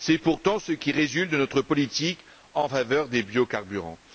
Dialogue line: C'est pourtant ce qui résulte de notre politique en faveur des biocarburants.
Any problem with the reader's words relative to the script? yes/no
no